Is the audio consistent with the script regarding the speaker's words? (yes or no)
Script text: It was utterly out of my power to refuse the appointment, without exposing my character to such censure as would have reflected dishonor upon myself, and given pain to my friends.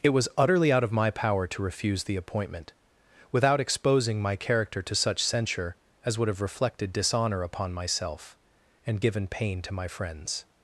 yes